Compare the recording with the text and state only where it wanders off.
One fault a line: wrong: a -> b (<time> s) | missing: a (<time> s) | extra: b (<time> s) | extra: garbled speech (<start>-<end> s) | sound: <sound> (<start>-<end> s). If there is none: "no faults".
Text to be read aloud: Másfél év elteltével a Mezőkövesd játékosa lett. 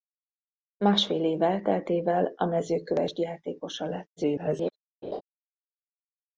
extra: garbled speech (4.2-4.7 s)
sound: laugh (5.0-5.2 s)